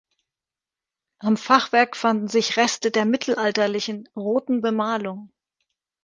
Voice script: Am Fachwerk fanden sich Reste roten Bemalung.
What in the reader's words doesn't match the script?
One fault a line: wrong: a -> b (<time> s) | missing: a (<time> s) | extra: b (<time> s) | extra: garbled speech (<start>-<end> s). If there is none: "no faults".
extra: der mittelalterlichen (2.9 s)